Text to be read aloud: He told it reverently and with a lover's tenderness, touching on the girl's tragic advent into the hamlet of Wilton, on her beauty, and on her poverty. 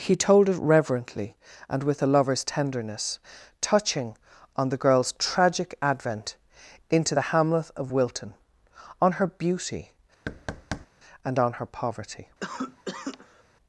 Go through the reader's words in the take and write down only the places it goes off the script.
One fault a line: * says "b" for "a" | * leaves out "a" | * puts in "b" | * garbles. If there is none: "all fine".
all fine